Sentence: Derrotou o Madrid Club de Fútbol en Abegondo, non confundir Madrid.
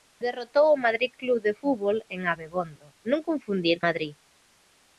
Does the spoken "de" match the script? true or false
true